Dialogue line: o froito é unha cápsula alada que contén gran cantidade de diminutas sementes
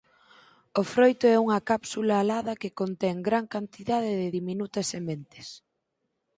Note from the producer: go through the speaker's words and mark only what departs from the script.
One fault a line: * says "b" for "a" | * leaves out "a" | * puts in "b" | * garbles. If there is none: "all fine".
all fine